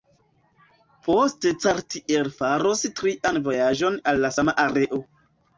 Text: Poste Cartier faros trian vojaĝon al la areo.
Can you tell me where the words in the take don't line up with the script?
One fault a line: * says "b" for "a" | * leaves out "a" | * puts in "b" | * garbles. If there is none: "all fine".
* puts in "sama"